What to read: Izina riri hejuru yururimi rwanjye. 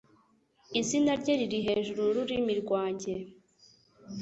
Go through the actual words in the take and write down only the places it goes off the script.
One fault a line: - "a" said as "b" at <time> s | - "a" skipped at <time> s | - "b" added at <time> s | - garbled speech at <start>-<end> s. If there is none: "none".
- "rye" added at 1.2 s